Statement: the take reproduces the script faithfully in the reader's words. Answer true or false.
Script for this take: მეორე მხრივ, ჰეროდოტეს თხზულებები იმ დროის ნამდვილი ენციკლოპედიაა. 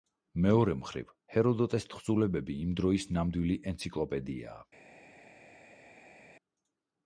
true